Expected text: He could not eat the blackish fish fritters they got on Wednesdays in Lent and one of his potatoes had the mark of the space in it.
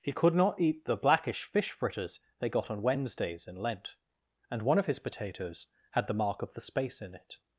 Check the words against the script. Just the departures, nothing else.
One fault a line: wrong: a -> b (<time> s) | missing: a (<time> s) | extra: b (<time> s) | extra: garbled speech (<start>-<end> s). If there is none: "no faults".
no faults